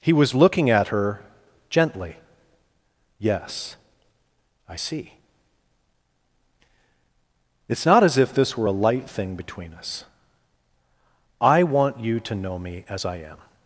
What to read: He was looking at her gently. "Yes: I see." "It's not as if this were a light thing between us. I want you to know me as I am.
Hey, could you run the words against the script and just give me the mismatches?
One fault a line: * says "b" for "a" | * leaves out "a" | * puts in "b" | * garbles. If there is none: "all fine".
all fine